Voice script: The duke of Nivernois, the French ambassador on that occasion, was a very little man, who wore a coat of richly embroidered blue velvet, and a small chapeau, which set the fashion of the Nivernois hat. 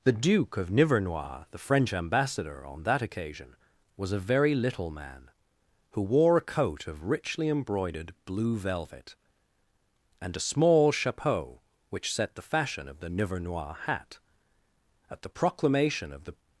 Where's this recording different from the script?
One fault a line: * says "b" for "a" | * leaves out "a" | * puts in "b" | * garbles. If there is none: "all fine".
* puts in "At the proclamation of the"